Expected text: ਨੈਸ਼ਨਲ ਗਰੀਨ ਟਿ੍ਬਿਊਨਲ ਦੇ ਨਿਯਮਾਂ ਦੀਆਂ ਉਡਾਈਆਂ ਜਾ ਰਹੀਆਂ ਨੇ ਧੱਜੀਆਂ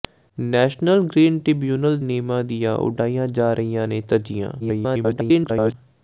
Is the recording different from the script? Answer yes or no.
yes